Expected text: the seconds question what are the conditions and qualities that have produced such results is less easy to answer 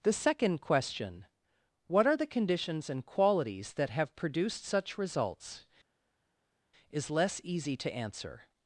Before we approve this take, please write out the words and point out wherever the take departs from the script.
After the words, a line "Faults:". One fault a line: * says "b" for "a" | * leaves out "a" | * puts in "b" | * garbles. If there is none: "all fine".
the second question what are the conditions and qualities that have produced such results is less easy to answer
Faults:
* says "second" for "seconds"